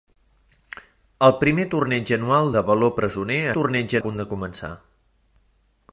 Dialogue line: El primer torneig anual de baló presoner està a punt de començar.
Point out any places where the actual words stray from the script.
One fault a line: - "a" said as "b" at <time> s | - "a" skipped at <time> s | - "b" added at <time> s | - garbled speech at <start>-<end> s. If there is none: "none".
- "està" said as "torneig" at 3.6 s